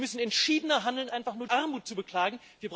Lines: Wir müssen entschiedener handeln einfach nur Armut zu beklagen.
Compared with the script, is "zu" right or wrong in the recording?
right